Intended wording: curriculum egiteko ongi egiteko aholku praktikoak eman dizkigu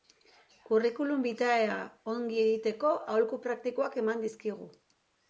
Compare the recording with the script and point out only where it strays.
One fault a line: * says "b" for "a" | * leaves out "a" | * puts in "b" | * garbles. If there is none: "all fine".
* says "vitaea" for "egiteko"